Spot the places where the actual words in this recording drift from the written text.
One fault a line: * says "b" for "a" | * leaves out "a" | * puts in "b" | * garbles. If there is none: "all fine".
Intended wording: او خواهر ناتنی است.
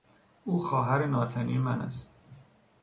* puts in "من"